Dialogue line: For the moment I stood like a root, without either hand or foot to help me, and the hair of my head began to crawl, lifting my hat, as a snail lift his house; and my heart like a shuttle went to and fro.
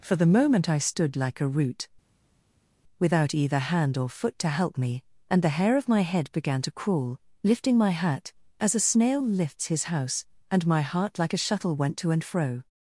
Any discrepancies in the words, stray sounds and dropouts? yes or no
yes